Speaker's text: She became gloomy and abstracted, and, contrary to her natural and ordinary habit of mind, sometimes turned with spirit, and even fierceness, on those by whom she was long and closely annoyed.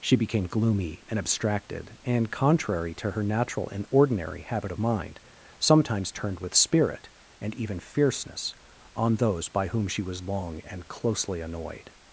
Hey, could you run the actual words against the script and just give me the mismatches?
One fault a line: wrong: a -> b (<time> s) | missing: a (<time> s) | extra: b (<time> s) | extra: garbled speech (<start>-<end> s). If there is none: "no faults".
no faults